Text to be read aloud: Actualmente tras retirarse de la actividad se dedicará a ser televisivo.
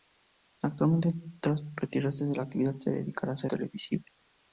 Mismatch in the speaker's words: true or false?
false